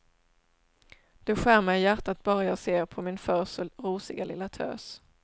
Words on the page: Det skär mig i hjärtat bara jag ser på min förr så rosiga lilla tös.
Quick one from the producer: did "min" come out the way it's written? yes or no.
yes